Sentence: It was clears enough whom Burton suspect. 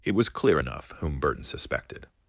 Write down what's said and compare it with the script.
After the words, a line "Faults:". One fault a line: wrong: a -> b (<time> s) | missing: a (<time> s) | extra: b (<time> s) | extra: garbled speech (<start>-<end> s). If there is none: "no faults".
It was clear enough whom Burton suspected.
Faults:
wrong: clears -> clear (0.3 s)
wrong: suspect -> suspected (1.4 s)